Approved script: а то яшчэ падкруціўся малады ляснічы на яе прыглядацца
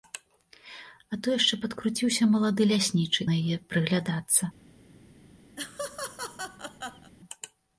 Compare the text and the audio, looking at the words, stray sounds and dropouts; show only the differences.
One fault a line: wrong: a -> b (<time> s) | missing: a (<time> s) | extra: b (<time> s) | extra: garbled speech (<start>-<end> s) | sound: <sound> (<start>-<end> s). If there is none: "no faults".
sound: laugh (5.6-7.1 s)